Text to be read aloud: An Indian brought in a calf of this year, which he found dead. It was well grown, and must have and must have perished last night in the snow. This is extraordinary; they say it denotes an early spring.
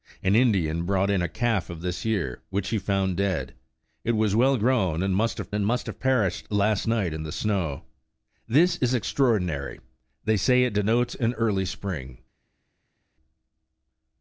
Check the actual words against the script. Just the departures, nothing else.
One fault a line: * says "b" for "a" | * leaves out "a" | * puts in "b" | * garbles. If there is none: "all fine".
all fine